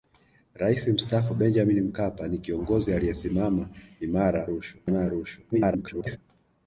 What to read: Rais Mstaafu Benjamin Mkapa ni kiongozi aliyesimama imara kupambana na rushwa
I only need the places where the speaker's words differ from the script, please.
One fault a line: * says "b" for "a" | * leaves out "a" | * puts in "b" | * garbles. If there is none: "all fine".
* says "rushwa" for "kupambana"
* garbles